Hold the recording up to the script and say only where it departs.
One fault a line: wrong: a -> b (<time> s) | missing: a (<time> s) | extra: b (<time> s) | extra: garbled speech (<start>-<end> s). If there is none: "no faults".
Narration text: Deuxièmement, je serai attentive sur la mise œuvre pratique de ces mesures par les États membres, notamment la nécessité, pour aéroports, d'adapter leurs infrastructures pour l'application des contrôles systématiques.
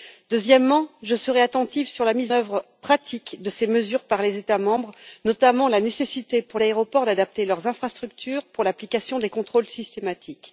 no faults